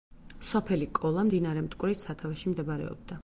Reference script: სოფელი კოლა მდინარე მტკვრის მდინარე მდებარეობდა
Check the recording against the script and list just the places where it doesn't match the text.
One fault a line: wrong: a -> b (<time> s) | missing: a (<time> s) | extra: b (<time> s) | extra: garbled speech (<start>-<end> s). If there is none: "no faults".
wrong: მდინარე -> სათავეში (2.1 s)